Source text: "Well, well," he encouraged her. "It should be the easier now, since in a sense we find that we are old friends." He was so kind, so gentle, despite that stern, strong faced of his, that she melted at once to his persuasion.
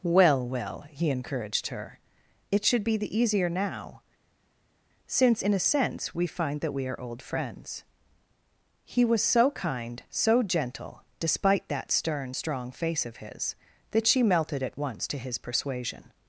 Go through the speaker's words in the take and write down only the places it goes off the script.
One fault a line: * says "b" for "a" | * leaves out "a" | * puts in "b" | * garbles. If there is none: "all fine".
* says "face" for "faced"